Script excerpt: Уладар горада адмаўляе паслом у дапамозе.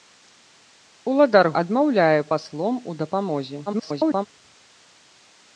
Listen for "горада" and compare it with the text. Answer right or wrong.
wrong